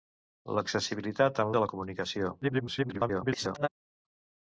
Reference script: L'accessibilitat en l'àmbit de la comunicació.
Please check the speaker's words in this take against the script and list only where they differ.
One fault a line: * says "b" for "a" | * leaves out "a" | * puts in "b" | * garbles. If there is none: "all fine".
* leaves out "l'àmbit"
* garbles